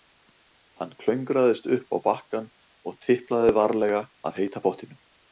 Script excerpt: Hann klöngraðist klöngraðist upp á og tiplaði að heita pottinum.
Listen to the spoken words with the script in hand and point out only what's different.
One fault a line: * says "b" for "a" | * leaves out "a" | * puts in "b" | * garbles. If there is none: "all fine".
* leaves out "klöngraðist"
* puts in "bakkann"
* puts in "varlega"